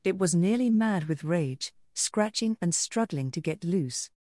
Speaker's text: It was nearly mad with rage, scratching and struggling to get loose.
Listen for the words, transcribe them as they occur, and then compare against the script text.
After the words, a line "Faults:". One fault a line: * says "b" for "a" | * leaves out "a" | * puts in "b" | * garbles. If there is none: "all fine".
It was nearly mad with rage, scratching and struggling to get loose.
Faults:
all fine